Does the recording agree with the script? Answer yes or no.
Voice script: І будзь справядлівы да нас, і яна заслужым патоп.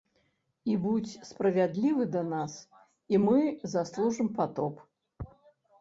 no